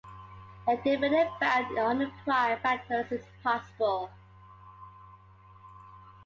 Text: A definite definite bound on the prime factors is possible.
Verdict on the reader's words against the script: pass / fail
fail